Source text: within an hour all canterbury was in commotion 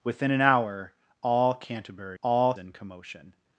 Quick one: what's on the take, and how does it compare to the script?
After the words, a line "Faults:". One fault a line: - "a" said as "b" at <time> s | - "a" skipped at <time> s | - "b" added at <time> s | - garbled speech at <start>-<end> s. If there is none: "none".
within an hour all canterbury all in commotion
Faults:
- "was" said as "all" at 2.2 s